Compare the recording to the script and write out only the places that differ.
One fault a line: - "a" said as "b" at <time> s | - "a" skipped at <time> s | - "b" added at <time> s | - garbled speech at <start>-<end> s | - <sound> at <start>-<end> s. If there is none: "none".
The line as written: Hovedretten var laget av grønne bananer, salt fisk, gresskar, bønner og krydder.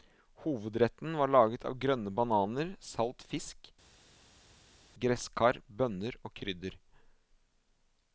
none